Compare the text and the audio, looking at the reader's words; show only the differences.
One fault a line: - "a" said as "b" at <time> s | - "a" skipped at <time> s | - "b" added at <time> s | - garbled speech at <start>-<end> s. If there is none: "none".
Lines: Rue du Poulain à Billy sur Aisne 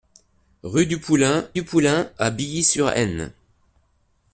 - "du Poulain" added at 1.5 s